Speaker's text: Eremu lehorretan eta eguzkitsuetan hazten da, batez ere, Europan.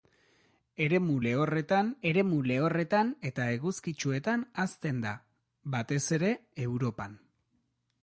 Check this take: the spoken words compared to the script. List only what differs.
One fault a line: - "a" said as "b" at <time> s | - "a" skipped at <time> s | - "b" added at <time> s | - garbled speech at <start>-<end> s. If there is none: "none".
- "eremu lehorretan" added at 2.1 s